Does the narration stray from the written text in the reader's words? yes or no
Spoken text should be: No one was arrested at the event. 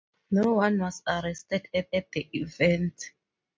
yes